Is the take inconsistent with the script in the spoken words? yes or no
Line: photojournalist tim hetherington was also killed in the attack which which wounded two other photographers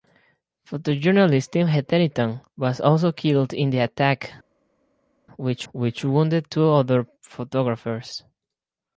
no